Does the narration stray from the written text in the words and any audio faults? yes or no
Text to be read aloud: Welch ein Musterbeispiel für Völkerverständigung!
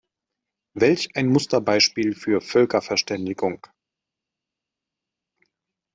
no